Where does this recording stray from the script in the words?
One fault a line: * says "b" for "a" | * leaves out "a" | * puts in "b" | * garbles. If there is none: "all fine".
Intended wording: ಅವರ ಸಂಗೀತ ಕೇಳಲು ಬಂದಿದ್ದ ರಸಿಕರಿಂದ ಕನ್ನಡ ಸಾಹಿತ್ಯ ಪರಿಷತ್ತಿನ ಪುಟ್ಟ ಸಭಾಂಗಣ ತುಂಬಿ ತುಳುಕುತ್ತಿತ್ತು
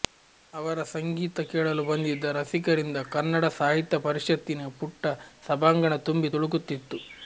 all fine